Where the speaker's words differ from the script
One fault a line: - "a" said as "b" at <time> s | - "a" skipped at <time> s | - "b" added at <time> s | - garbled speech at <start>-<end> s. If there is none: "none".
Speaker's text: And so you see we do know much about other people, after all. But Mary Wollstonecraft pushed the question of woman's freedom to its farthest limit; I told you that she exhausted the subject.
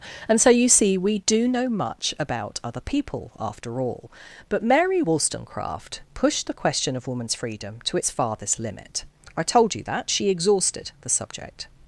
none